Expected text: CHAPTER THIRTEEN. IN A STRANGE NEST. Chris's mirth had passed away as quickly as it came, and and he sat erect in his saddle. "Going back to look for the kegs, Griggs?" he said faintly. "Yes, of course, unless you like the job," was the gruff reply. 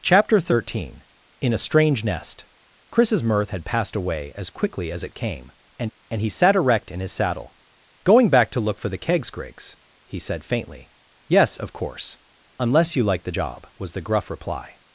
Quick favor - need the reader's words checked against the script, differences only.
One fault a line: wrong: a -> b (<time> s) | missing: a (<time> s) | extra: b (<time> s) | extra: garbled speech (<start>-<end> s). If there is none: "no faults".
no faults